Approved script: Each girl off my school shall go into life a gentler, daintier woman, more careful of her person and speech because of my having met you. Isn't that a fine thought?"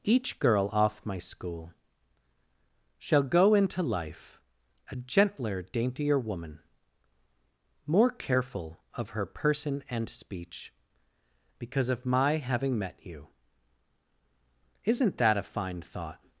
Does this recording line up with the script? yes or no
yes